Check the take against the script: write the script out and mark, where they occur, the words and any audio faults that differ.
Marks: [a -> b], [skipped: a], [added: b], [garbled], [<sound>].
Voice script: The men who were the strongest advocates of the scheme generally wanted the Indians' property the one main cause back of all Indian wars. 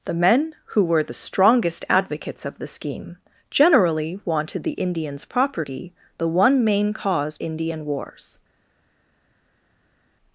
The men who were the strongest advocates of the scheme generally wanted the Indians' property the one main cause [skipped: back of all] Indian wars.